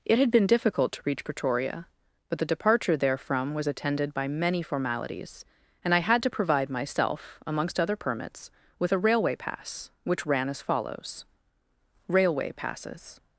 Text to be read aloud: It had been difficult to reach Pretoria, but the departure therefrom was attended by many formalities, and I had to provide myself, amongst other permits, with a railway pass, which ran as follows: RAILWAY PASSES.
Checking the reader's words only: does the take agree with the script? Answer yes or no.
yes